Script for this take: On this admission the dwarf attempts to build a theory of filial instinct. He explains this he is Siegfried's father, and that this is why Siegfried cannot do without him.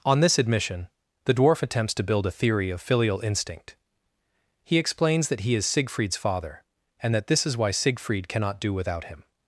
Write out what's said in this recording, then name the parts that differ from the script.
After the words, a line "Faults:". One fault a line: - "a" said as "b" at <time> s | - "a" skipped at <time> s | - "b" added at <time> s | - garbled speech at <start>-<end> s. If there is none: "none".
On this admission the dwarf attempts to build a theory of filial instinct. He explains that he is Siegfried's father, and that this is why Siegfried cannot do without him.
Faults:
- "this" said as "that" at 5.3 s